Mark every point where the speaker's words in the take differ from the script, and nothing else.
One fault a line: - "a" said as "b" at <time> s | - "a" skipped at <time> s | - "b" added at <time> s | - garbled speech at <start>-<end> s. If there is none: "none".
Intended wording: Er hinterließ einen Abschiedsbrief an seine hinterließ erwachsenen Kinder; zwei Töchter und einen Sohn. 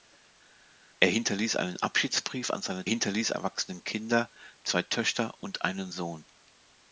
none